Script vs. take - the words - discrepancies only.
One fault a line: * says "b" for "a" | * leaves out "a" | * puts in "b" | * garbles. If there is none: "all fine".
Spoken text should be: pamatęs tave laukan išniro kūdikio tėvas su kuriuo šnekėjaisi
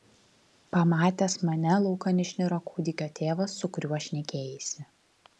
* says "mane" for "tave"